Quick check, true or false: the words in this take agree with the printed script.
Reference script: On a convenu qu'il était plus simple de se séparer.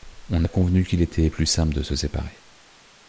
true